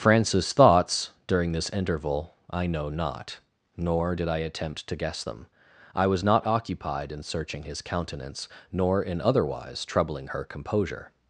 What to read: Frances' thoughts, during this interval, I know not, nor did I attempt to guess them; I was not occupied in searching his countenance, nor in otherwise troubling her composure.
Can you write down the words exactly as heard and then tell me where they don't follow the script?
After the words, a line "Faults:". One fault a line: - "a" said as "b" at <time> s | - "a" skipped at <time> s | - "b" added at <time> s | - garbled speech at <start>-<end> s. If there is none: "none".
Frances' thoughts, during this interval, I know not, nor did I attempt to guess them; I was not occupied in searching his countenance, nor in otherwise troubling her composure.
Faults:
none